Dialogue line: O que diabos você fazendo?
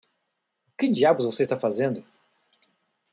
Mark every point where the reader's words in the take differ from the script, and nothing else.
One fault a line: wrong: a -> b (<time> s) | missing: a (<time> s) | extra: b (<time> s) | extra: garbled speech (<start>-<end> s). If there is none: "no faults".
extra: está (1.4 s)